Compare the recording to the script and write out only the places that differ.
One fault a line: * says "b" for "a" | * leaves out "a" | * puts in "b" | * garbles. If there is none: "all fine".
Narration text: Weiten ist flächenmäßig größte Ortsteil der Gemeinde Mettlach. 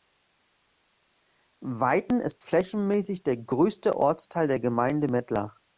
* puts in "der"